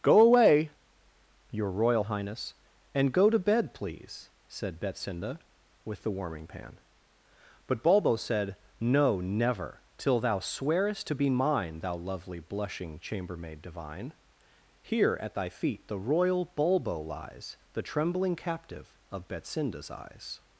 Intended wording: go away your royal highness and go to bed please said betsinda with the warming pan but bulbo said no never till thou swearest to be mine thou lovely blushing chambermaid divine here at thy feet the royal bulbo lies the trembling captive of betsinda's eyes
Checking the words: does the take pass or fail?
pass